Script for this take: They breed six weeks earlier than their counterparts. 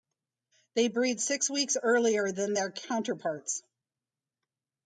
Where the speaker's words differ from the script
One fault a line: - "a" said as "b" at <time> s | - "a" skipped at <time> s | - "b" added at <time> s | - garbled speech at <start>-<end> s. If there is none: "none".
none